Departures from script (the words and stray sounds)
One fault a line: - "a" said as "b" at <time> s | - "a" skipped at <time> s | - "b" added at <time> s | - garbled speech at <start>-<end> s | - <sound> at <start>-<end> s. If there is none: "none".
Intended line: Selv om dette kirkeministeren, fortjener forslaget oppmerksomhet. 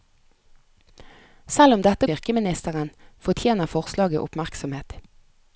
none